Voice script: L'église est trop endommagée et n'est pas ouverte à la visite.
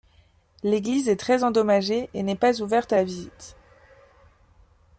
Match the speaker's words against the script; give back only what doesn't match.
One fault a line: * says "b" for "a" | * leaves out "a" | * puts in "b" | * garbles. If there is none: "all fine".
* says "très" for "trop"